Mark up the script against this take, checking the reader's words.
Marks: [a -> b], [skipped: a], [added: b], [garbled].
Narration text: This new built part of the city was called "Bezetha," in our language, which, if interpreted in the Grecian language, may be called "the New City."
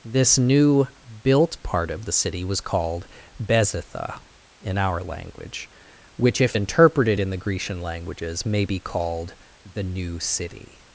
This new built part of the city was called "Bezetha," in our language, which, if interpreted in the Grecian [language, -> languages] may be called "the New City."